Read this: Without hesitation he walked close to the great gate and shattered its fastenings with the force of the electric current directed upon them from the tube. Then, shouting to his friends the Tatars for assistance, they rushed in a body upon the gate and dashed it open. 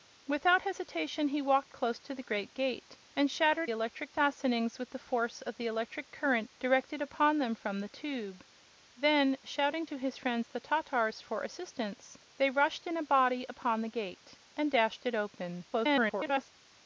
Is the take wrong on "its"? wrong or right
wrong